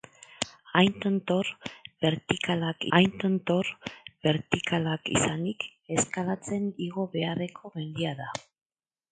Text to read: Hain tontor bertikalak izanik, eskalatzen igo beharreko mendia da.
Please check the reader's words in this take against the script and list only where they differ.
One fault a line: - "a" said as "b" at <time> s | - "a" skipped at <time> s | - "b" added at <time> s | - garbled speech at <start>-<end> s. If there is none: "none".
- "hain tontor bertikalak" added at 2.9 s